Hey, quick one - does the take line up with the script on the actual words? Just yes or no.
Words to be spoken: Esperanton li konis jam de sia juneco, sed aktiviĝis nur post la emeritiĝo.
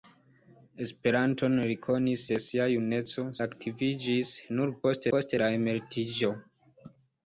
no